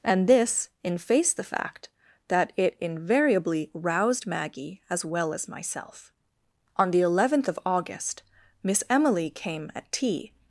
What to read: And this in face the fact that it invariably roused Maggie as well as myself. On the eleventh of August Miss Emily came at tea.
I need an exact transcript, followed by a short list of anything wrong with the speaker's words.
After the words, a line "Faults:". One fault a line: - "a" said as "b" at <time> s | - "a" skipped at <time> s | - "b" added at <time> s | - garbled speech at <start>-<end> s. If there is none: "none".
And this in face the fact that it invariably roused Maggie as well as myself. On the eleventh of August Miss Emily came at tea.
Faults:
none